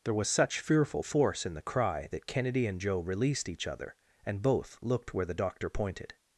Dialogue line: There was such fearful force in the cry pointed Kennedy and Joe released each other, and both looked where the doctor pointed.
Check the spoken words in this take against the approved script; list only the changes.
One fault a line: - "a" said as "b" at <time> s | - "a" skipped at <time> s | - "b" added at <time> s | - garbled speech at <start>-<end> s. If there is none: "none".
- "pointed" said as "that" at 2.1 s